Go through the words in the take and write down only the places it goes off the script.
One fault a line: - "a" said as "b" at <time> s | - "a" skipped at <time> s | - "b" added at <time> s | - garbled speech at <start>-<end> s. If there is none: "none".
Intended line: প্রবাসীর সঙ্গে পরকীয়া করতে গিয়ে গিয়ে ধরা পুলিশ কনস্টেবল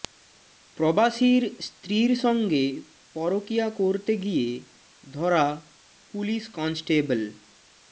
- "স্ত্রীর" added at 1.6 s
- "গিয়ে" skipped at 4.5 s